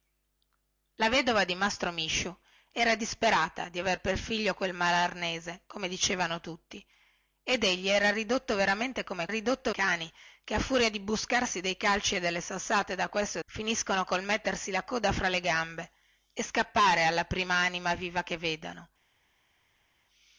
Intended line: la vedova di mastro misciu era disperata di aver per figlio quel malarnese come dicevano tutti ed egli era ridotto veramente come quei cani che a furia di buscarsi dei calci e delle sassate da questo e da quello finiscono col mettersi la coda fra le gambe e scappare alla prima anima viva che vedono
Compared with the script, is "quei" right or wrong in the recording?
wrong